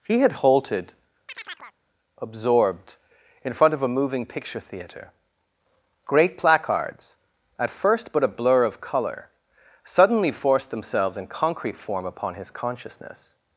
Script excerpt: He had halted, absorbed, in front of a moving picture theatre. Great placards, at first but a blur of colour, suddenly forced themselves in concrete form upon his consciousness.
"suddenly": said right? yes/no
yes